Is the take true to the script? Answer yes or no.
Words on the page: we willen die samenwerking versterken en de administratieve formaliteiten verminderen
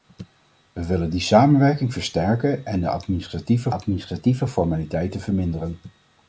no